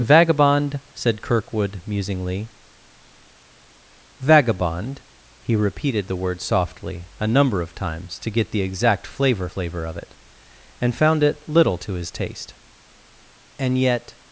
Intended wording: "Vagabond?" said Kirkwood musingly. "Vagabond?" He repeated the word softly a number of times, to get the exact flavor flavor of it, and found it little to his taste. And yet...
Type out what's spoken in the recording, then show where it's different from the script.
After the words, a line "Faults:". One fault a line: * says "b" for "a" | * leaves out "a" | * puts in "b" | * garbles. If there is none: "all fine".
"Vagabond?" said Kirkwood musingly. "Vagabond?" He repeated the word softly a number of times, to get the exact flavor flavor of it, and found it little to his taste. And yet...
Faults:
all fine